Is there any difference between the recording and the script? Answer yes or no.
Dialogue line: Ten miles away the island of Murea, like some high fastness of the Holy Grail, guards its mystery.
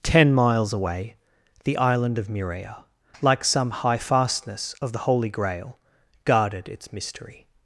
yes